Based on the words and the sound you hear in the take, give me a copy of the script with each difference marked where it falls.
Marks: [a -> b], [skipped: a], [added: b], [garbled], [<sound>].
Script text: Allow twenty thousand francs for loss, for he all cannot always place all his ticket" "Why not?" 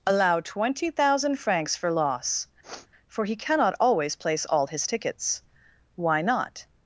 Allow twenty thousand francs for loss, [sniff] for he [skipped: all] cannot always place all his [ticket" -> tickets] "Why not?"